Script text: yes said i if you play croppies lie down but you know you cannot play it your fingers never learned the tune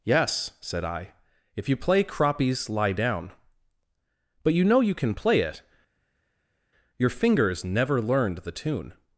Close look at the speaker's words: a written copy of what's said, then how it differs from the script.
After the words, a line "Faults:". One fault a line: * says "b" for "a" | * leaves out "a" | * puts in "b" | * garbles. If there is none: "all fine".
yes said i if you play croppies lie down but you know you can play it your fingers never learned the tune
Faults:
* says "can" for "cannot"